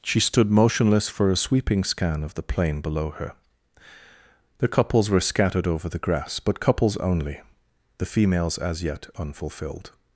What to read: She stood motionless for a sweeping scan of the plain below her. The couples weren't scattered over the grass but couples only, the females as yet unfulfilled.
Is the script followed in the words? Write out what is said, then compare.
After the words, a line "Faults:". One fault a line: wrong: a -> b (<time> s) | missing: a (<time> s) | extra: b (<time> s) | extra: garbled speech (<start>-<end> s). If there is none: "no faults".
She stood motionless for a sweeping scan of the plain below her. The couples were scattered over the grass but couples only, the females as yet unfulfilled.
Faults:
wrong: weren't -> were (5.1 s)